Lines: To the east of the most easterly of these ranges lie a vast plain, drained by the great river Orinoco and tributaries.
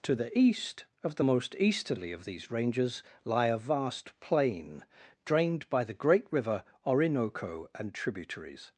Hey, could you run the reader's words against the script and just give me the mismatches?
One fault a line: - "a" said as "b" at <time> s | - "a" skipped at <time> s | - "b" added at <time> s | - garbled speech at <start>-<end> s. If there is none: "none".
none